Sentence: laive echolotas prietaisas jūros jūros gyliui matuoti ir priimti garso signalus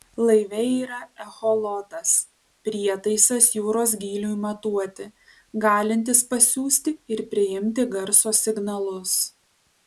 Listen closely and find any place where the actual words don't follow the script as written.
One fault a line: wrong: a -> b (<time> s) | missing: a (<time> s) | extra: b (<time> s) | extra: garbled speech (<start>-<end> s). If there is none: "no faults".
extra: yra (0.8 s)
missing: jūros (3.9 s)
extra: galintis pasiųsti (5.7 s)